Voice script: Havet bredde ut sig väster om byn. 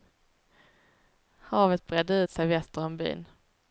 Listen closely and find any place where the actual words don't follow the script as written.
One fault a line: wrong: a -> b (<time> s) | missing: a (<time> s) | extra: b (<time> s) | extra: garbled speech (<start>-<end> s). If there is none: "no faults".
no faults